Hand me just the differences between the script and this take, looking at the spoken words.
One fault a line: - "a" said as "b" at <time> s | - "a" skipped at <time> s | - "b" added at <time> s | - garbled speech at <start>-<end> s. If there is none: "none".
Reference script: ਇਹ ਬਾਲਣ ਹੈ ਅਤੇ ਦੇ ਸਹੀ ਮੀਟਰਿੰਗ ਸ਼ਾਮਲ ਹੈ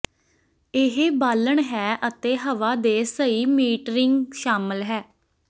- "ਹਵਾ" added at 2.4 s